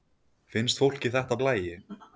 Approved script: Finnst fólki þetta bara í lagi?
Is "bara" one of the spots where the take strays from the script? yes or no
yes